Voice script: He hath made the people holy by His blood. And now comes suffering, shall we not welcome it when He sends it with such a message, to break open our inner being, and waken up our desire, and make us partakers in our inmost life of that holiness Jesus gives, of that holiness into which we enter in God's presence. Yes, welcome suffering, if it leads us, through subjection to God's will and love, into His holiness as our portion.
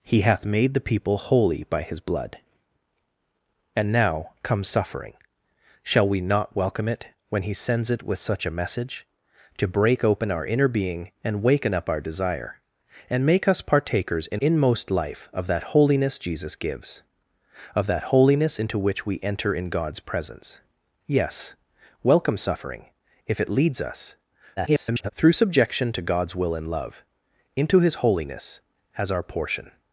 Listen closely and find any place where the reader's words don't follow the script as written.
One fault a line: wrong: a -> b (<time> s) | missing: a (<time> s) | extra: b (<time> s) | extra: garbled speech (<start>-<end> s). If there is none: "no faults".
missing: our (14.4 s)
extra: garbled speech (24.6-25.1 s)